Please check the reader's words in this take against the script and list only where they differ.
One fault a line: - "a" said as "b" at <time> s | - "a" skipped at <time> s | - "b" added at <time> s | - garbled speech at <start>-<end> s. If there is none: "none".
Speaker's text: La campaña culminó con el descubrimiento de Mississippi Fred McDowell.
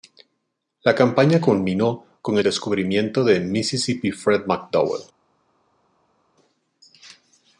- "el" skipped at 2.4 s